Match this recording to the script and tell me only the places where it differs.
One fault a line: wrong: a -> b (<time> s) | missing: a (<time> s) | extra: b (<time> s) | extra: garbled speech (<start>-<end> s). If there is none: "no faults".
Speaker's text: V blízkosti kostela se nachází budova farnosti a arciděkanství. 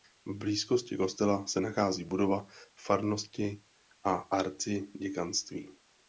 no faults